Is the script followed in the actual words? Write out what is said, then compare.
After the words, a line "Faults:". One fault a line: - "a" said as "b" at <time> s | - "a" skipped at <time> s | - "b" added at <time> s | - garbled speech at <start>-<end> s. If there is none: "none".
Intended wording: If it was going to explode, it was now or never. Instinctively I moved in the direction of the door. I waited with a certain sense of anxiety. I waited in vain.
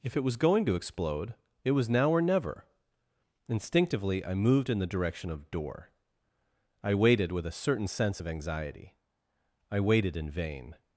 If it was going to explode, it was now or never. Instinctively I moved in the direction of door. I waited with a certain sense of anxiety. I waited in vain.
Faults:
- "the" skipped at 5.5 s